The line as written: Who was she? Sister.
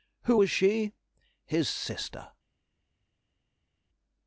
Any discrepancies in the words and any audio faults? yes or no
yes